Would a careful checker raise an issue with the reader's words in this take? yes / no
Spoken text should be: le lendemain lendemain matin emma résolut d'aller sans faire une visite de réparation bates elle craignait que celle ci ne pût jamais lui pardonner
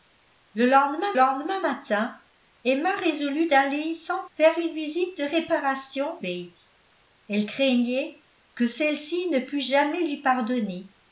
no